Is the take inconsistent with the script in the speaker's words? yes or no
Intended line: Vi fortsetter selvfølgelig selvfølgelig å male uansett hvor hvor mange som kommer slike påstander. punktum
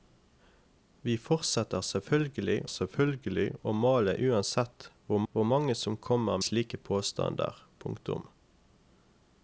no